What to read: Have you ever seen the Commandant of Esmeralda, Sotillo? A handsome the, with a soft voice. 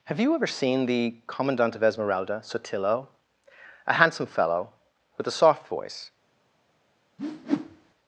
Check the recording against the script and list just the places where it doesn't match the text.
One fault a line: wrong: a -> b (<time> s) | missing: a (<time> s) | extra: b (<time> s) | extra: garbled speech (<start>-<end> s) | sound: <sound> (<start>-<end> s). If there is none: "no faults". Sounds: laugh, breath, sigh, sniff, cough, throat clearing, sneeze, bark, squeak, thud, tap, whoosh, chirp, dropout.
wrong: the -> fellow (4.2 s)
sound: whoosh (7.2-7.9 s)